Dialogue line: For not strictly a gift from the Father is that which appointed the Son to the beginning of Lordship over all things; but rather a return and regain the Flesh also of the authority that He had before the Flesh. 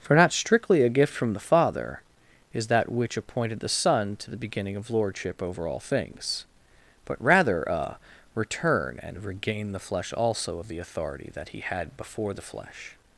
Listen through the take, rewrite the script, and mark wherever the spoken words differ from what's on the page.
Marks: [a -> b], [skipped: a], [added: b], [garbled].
For not strictly a gift from the Father is that which appointed the Son to the beginning of Lordship over all things; but rather a return and regain the Flesh also of the authority that He had before the Flesh.